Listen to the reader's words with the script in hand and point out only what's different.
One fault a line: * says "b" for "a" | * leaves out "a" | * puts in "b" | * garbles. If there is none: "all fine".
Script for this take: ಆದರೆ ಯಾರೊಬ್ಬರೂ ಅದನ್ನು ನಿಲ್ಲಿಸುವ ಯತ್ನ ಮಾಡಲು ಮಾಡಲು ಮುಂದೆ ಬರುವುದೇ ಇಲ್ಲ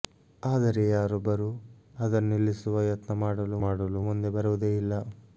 all fine